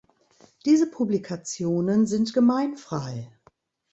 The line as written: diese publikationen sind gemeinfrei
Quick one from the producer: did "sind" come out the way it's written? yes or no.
yes